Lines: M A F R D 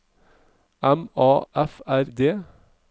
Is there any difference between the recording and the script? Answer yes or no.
no